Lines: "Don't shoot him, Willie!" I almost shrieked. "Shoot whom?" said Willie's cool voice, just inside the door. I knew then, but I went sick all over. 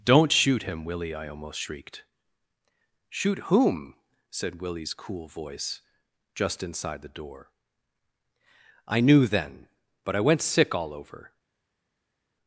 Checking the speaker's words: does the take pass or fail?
pass